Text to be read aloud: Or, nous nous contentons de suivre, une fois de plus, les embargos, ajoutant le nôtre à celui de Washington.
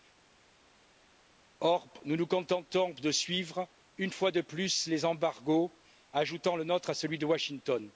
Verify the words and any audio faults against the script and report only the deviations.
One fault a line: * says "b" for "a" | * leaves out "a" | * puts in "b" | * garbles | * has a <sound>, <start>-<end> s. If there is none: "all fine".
all fine